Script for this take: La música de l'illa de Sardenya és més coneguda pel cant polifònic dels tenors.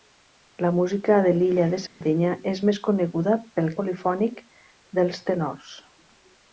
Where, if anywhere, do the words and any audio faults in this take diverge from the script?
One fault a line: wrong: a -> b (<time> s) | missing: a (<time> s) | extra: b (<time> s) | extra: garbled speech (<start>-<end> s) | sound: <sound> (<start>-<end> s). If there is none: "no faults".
sound: dropout (1.9-2.0 s)
missing: cant (3.7 s)